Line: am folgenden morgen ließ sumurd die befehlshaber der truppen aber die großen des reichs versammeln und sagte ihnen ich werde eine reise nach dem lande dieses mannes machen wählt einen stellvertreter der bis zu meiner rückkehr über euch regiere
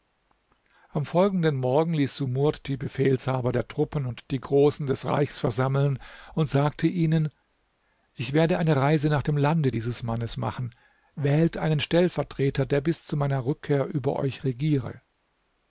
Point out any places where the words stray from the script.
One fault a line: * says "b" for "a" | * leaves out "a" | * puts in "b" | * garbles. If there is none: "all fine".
* says "und" for "aber"